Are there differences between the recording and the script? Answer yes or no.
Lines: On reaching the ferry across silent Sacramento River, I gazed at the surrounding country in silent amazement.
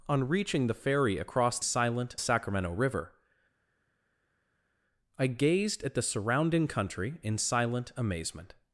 no